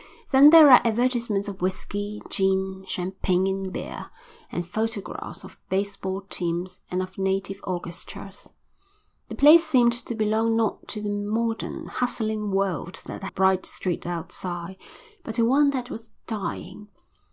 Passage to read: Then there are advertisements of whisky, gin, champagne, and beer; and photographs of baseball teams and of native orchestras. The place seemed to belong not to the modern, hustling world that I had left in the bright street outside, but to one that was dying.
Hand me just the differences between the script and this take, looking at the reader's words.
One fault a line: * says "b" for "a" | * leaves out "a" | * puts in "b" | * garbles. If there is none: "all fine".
* leaves out "had left in"